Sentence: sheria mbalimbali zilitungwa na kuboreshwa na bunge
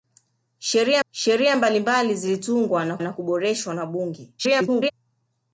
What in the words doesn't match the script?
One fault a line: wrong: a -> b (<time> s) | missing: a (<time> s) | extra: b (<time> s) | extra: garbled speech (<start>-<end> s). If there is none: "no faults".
extra: sheria (1.1 s)
extra: na (3.0 s)
extra: garbled speech (4.4-4.9 s)